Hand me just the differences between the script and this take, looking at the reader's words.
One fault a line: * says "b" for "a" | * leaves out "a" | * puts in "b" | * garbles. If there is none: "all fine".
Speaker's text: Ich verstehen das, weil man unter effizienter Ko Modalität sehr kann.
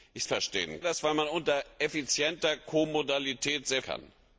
all fine